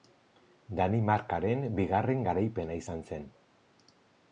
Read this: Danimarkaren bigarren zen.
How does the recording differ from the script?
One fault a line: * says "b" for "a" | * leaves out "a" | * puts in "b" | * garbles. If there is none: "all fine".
* puts in "garaipena izan"